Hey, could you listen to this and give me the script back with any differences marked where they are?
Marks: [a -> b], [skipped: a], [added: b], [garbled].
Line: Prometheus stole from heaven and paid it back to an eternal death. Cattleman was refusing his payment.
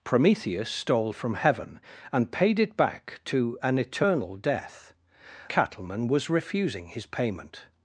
Prometheus stole from heaven and paid it back to an eternal death. Cattleman was refusing his payment.